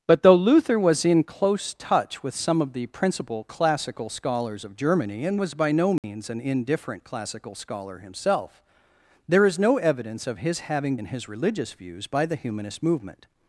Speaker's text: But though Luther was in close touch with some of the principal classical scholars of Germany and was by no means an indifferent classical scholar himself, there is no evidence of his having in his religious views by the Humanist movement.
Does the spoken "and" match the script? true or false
true